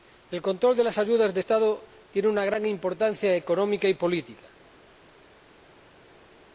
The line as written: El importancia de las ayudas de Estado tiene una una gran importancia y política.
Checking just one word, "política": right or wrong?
right